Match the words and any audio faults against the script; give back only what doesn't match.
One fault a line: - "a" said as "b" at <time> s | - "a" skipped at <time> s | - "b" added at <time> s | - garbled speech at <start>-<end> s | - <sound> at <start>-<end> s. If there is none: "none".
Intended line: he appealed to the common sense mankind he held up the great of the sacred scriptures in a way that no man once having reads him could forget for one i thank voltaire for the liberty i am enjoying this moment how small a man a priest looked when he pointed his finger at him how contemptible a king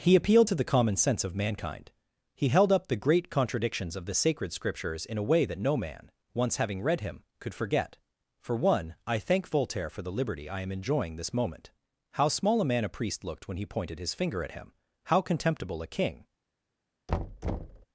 - "of" added at 1.3 s
- "contradictions" added at 3.3 s
- "reads" said as "read" at 6.8 s
- thud at 17.1-17.9 s